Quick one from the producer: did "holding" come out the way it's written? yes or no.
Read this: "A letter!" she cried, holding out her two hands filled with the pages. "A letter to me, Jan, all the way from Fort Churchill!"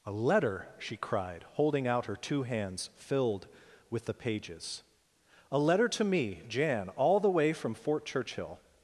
yes